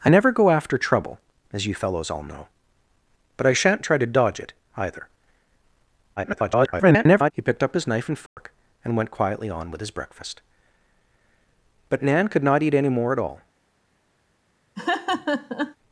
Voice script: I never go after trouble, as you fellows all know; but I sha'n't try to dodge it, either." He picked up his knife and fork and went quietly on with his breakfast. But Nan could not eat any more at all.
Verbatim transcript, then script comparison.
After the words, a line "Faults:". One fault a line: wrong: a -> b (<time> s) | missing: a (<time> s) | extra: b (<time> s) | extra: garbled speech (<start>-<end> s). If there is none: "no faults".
I never go after trouble, as you fellows all know; but I sha'n't try to dodge it, either." [garbled] He picked up his knife and fork and went quietly on with his breakfast. But Nan could not eat any more at all.
Faults:
extra: garbled speech (6.2-7.3 s)